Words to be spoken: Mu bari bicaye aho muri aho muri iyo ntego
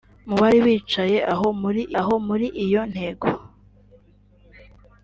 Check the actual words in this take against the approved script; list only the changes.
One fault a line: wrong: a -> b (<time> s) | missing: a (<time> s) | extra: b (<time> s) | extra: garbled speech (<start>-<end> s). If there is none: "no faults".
no faults